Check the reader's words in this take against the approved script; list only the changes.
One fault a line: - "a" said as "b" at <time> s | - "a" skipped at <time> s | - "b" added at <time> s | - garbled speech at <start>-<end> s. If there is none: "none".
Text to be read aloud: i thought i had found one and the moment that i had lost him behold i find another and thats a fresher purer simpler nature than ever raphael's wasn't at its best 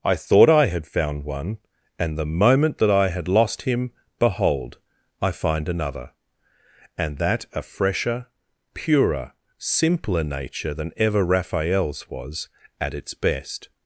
- "thats" said as "that" at 7.2 s
- "wasn't" said as "was" at 12.1 s